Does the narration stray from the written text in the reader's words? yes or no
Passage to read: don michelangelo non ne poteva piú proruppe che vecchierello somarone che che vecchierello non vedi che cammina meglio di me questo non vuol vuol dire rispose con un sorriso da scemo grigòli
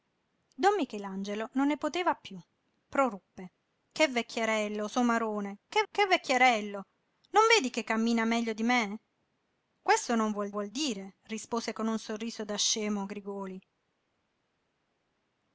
no